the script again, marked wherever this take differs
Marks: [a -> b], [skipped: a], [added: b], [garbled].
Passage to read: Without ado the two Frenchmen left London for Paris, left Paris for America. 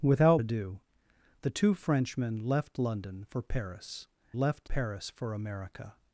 Without ado the two Frenchmen left London for Paris, left Paris for America.